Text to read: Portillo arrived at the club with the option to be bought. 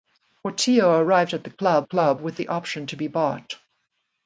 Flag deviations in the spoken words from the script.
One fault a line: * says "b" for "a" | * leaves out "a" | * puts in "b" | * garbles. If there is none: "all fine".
* puts in "club"